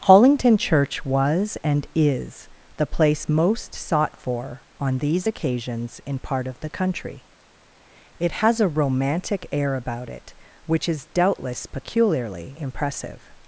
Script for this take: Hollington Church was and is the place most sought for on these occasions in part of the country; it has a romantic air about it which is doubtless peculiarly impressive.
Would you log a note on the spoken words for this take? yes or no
no